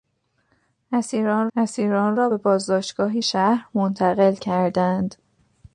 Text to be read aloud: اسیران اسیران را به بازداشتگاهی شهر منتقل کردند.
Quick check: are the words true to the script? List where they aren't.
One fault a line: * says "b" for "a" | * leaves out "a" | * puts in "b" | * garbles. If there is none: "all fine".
all fine